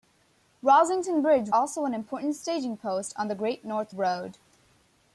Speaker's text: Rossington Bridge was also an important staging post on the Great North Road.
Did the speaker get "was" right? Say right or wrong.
wrong